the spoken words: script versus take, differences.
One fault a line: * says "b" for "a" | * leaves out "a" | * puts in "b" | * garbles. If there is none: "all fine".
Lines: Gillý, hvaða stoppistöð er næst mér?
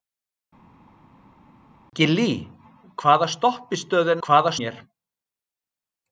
* says "hvaða" for "næst"